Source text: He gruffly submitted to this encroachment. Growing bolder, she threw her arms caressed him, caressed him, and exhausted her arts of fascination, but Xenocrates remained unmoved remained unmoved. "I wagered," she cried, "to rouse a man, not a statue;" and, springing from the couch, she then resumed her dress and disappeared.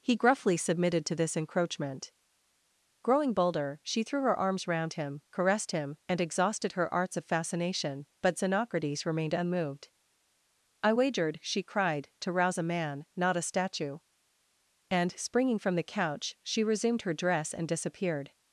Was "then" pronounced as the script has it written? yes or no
no